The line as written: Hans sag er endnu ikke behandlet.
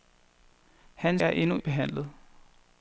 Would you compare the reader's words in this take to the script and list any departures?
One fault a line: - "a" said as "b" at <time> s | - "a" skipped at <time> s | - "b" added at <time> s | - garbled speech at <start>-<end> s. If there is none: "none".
- "sag" skipped at 1.2 s
- "ikke" skipped at 1.6 s